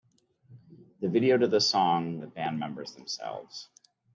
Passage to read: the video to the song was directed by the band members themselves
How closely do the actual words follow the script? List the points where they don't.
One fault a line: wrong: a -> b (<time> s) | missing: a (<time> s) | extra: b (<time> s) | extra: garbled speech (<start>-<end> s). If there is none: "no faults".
missing: was directed by (2.2 s)